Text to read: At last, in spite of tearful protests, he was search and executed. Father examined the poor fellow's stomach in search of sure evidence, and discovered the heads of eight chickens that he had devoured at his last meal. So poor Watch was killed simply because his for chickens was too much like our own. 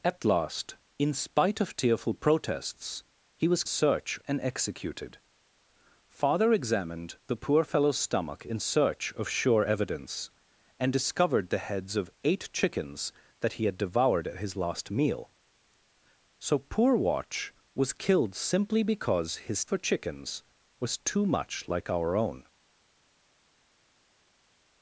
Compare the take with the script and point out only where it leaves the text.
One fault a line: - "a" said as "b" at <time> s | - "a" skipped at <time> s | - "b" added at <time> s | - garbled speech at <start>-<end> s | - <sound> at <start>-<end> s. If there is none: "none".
none